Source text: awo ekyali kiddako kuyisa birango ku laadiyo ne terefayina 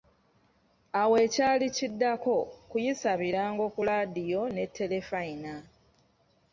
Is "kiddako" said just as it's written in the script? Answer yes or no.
yes